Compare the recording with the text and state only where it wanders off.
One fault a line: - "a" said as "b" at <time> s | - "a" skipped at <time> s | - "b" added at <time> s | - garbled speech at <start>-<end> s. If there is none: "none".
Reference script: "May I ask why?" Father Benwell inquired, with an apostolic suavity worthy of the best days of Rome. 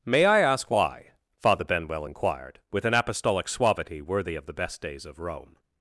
none